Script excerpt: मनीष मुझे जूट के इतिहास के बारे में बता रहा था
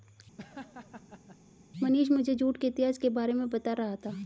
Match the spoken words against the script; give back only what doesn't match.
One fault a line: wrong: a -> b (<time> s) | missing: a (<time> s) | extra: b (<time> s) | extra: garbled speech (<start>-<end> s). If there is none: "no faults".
no faults